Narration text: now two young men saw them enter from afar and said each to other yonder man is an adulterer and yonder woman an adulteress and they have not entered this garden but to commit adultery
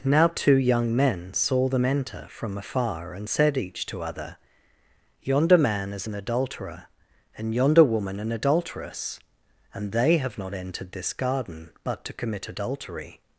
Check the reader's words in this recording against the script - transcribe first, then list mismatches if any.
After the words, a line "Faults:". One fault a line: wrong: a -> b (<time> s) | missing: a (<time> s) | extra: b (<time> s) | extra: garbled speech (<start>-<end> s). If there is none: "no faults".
now two young men saw them enter from afar and said each to other yonder man is an adulterer and yonder woman an adulteress and they have not entered this garden but to commit adultery
Faults:
no faults